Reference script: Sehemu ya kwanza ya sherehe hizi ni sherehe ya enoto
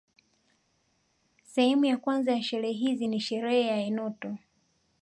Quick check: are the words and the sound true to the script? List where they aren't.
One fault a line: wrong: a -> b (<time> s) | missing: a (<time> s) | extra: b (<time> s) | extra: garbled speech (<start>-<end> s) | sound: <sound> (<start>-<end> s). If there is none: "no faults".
no faults